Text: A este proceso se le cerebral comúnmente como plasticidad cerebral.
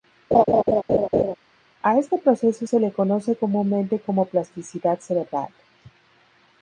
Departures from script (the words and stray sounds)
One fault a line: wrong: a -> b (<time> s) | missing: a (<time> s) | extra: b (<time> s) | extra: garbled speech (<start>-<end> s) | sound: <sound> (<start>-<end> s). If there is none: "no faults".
sound: laugh (0.3-1.3 s)
wrong: cerebral -> conoce (2.9 s)